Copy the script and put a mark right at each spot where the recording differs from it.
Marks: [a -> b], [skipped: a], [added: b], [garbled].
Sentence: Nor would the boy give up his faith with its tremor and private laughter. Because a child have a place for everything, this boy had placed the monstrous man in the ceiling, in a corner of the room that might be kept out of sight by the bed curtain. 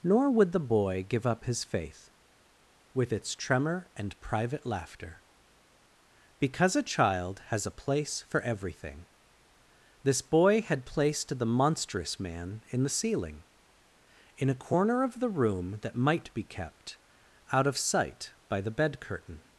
Nor would the boy give up his faith with its tremor and private laughter. Because a child [have -> has] a place for everything, this boy had placed the monstrous man in the ceiling, in a corner of the room that might be kept out of sight by the bed curtain.